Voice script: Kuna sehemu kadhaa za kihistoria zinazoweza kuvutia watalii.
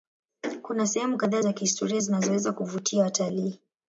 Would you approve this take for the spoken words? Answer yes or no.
yes